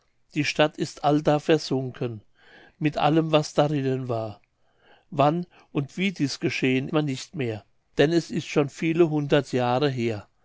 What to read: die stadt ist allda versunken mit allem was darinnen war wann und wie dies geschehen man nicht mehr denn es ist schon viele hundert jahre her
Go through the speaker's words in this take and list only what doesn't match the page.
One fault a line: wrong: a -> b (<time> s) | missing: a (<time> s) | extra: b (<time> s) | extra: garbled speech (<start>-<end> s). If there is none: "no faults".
no faults